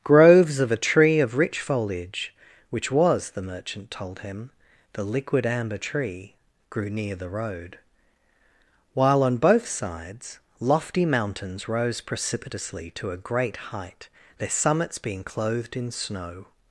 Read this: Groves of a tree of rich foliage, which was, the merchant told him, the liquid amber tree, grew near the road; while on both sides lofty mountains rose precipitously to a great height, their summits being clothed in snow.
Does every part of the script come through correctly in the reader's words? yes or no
yes